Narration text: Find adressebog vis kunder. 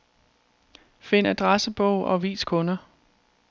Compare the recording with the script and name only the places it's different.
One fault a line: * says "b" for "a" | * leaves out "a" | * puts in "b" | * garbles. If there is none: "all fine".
* puts in "og"